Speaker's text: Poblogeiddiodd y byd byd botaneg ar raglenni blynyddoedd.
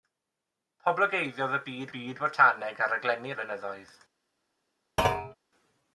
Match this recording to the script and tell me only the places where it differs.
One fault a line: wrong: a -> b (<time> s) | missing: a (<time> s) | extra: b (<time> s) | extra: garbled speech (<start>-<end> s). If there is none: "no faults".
no faults